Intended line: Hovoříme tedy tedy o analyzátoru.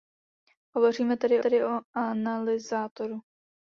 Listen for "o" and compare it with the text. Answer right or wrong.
right